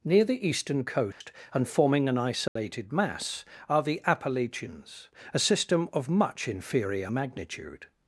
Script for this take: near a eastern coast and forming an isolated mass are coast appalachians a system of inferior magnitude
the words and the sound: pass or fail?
fail